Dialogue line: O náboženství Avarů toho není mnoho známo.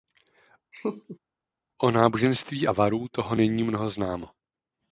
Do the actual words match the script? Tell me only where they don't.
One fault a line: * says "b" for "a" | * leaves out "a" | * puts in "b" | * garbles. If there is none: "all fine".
all fine